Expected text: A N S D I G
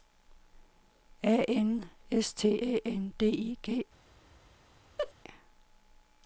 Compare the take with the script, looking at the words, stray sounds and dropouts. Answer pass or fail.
fail